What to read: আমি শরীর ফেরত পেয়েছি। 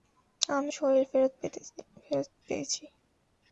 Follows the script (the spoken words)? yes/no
yes